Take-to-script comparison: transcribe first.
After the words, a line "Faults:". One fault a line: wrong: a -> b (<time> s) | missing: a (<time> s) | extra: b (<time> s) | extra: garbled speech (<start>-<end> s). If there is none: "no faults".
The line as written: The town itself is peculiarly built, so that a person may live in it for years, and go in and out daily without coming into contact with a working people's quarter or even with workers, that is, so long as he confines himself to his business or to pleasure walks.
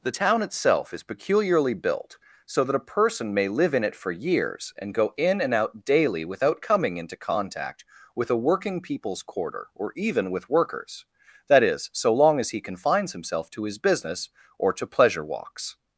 The town itself is peculiarly built, so that a person may live in it for years, and go in and out daily without coming into contact with a working people's quarter or even with workers, that is, so long as he confines himself to his business or to pleasure walks.
Faults:
no faults